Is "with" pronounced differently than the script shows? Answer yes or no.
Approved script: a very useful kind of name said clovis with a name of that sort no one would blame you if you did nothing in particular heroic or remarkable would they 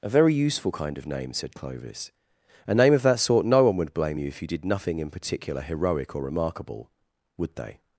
yes